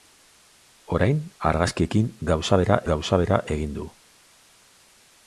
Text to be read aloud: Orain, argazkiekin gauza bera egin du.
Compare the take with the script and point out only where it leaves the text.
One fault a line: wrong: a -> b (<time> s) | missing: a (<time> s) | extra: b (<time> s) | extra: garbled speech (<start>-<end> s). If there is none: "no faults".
extra: gauza bera (2.9 s)